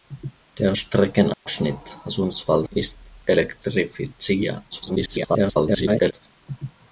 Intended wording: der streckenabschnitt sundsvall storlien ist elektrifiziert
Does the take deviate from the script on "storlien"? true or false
true